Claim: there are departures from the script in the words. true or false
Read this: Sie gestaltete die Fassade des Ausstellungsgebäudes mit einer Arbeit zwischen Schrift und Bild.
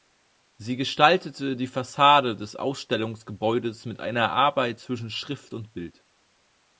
false